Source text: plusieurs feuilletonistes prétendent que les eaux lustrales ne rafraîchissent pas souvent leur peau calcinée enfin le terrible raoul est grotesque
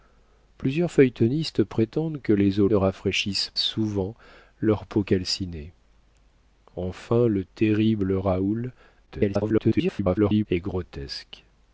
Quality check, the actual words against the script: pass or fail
fail